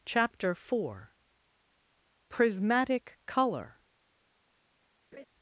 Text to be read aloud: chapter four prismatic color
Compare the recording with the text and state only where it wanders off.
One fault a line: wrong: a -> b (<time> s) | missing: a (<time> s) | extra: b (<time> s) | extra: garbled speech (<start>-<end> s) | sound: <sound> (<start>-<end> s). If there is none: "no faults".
sound: laugh (5.1-5.3 s)